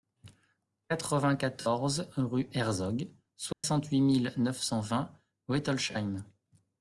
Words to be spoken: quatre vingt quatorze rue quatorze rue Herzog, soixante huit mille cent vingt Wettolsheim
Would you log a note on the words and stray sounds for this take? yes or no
yes